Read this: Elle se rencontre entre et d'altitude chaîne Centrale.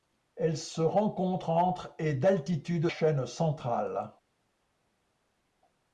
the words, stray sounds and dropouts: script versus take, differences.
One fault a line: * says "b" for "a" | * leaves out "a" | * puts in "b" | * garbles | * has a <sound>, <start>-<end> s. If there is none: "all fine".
all fine